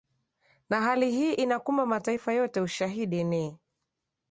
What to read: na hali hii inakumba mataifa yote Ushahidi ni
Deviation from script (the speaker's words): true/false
false